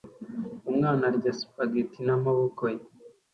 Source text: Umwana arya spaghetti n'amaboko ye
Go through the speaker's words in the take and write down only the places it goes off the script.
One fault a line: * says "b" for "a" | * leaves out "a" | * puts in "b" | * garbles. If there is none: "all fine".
all fine